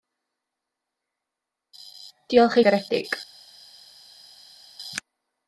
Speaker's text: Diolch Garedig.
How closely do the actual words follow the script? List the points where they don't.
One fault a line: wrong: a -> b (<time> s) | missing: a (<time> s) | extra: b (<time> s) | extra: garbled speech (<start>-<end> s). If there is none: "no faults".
no faults